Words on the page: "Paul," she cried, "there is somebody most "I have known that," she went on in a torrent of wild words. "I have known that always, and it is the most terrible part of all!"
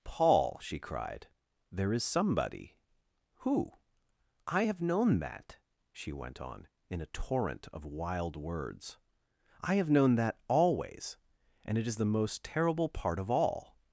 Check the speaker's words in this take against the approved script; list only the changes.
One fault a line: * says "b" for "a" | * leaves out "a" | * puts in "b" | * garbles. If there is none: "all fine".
* says "who" for "most"